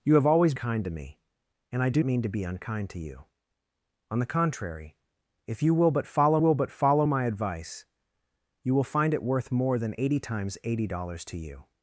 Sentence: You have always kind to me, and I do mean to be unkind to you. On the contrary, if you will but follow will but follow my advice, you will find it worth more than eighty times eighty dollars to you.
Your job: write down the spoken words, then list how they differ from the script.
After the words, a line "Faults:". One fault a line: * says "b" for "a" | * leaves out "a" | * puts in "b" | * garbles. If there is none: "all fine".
You have always kind to me, and I do mean to be unkind to you. On the contrary, if you will but follow will but follow my advice, you will find it worth more than eighty times eighty dollars to you.
Faults:
all fine